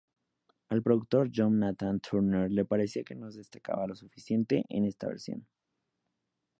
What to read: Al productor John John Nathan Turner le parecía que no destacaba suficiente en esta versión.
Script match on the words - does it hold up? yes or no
no